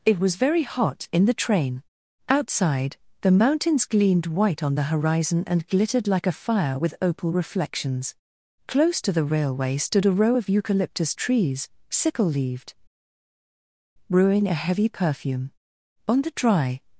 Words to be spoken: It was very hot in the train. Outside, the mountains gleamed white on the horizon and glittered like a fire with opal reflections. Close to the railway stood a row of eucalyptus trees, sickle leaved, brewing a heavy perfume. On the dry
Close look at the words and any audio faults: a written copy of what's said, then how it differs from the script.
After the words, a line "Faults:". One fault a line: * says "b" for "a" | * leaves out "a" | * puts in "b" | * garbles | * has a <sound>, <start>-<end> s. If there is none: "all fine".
It was very hot in the train. Outside, the mountains gleamed white on the horizon and glittered like a fire with opal reflections. Close to the railway stood a row of eucalyptus trees, sickle leaved, brewing a heavy perfume. On the dry
Faults:
all fine